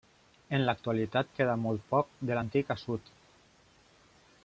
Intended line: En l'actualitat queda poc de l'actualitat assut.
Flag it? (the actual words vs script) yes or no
yes